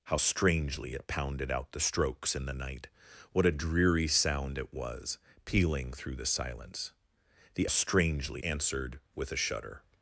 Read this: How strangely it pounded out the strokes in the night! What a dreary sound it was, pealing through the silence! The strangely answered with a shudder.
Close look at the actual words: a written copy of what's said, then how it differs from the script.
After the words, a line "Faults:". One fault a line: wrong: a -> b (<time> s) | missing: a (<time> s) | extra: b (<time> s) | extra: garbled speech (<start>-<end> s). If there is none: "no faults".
How strangely it pounded out the strokes in the night! What a dreary sound it was, pealing through the silence! The strangely answered with a shudder.
Faults:
no faults